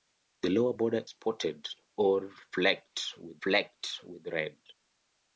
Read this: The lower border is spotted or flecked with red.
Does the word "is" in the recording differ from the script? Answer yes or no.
yes